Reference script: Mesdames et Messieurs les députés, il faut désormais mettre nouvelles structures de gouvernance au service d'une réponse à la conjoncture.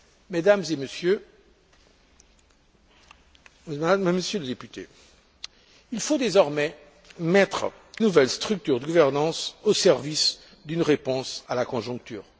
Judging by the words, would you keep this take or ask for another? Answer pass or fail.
pass